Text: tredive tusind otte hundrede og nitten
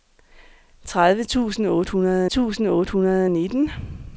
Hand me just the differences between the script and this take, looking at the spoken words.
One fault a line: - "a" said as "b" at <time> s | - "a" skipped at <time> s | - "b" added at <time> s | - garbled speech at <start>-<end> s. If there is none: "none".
- "tusind otte hundrede" added at 2.2 s